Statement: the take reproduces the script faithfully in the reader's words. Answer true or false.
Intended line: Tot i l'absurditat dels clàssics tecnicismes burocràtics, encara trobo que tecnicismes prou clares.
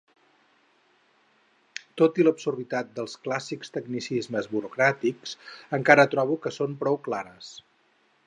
false